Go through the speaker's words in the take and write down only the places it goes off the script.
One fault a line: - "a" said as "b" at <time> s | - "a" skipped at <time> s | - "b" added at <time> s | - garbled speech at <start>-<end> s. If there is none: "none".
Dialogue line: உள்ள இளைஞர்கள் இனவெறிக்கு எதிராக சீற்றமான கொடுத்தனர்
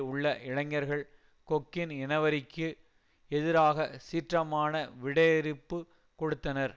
- "கொக்கின்" added at 1.5 s
- "விடையிறுப்பு" added at 5.0 s